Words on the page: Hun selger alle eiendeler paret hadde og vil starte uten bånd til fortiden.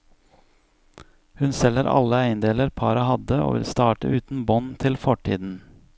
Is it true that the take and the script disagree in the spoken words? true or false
false